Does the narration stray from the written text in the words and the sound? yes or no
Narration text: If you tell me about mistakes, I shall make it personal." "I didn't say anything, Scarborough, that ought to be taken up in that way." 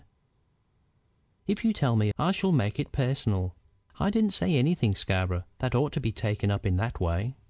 yes